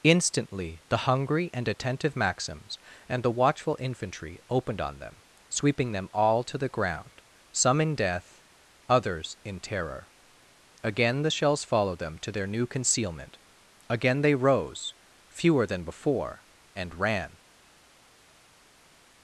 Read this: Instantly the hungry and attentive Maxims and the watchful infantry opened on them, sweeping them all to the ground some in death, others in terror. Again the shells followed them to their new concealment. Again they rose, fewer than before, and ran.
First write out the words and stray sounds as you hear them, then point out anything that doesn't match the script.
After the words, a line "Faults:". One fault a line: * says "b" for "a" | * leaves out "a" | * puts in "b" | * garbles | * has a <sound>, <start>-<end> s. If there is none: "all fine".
Instantly the hungry and attentive Maxims and the watchful infantry opened on them, sweeping them all to the ground some in death, others in terror. Again the shells followed them to their new concealment. Again they rose, fewer than before, and ran.
Faults:
all fine